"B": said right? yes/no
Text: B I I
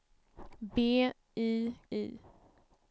yes